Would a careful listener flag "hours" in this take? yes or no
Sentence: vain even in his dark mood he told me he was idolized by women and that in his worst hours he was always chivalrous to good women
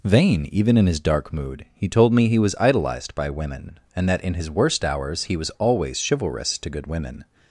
no